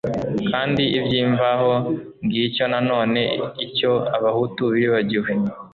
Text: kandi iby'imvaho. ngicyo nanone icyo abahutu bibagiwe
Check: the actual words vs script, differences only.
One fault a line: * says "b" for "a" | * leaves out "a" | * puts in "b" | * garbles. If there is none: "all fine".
all fine